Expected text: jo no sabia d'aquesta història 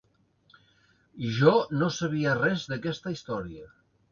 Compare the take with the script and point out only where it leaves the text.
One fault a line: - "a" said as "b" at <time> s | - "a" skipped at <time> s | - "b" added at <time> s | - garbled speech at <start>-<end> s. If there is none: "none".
- "res" added at 2.4 s